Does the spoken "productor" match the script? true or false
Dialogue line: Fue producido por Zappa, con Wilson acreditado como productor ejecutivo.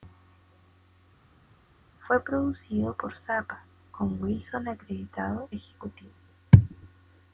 false